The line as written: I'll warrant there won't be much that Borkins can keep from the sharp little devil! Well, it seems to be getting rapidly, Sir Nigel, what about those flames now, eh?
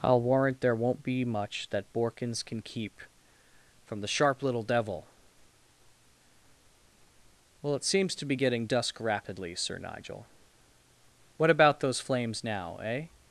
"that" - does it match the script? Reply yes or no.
yes